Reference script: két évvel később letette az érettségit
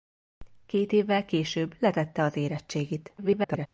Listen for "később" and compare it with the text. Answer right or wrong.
right